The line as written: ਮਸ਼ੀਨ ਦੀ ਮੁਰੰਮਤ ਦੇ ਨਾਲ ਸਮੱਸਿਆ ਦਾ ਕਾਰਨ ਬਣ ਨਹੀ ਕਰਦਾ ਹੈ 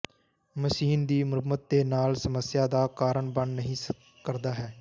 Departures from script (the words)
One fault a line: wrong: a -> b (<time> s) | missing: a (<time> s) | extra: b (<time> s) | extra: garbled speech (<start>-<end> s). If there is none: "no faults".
no faults